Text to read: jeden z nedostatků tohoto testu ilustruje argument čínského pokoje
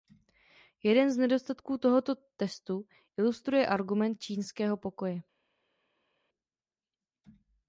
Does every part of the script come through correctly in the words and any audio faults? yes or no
yes